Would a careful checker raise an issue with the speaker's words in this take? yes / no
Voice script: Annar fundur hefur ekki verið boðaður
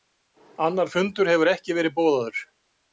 no